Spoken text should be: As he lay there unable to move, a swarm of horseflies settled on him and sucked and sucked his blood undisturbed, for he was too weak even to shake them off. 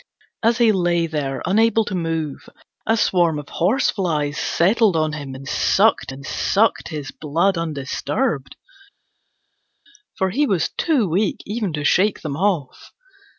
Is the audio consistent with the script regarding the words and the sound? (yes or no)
yes